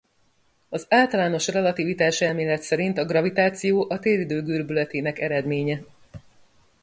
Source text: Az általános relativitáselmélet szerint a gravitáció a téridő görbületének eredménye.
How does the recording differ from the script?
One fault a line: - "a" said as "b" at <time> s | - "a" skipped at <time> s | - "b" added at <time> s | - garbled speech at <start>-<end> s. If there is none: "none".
none